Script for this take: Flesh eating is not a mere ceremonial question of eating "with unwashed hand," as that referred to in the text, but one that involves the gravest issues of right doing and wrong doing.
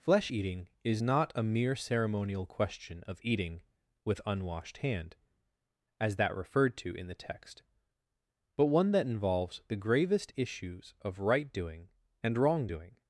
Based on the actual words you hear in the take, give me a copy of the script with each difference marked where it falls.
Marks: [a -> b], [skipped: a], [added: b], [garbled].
Flesh eating is not a mere ceremonial question of eating "with unwashed hand," as that referred to in the text, but one that involves the gravest issues of right doing and wrong doing.